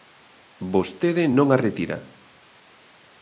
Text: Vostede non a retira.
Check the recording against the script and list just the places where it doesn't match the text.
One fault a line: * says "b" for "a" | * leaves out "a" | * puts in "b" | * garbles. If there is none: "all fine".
all fine